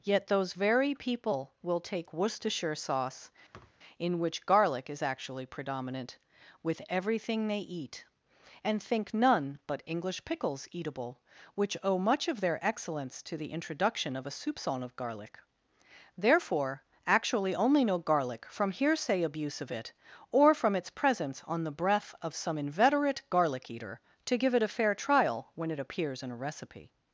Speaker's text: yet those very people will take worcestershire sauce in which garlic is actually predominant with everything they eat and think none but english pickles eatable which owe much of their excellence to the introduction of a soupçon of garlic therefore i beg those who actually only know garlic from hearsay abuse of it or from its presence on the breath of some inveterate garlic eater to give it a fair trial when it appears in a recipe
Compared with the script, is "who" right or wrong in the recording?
wrong